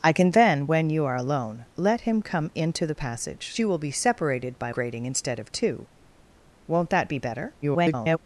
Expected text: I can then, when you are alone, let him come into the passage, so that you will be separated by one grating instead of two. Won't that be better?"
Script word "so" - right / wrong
wrong